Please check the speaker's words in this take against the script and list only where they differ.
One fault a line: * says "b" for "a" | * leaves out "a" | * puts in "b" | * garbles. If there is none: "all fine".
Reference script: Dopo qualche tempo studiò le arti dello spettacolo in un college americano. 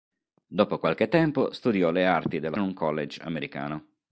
* leaves out "spettacolo in"